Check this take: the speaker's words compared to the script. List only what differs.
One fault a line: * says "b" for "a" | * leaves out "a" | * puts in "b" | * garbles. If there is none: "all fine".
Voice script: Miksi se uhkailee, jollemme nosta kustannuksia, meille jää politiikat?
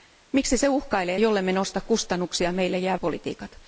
all fine